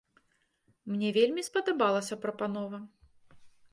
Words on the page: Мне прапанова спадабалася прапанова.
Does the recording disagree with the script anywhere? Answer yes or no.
yes